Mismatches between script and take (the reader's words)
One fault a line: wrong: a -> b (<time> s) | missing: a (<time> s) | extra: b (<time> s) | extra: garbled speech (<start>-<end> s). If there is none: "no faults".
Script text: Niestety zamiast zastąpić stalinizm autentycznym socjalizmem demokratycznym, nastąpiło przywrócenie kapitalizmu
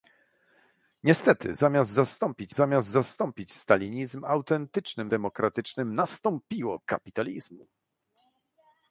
extra: zamiast zastąpić (2.5 s)
missing: socjalizmem (5.1 s)
missing: przywrócenie (6.8 s)